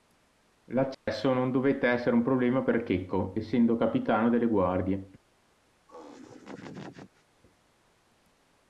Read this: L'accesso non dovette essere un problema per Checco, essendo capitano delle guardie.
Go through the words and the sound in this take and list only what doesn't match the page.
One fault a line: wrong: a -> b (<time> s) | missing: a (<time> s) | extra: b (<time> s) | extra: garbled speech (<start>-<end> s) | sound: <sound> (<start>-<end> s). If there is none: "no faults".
sound: dropout (0.9-1.1 s)
sound: laugh (5.9-7.2 s)